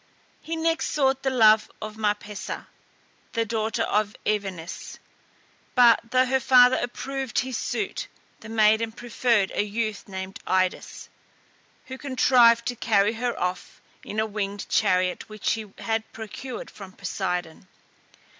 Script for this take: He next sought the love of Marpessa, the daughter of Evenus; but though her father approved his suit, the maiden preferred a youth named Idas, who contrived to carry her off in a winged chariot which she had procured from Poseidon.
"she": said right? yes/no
no